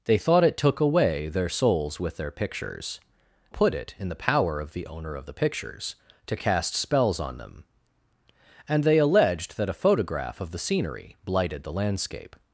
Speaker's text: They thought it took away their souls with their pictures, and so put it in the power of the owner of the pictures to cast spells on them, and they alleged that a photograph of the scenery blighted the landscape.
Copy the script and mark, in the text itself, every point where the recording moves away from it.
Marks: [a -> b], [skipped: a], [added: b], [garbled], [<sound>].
They thought it took away their souls with their pictures, [skipped: and so] put it in the power of the owner of the pictures to cast spells on them, and they alleged that a photograph of the scenery blighted the landscape.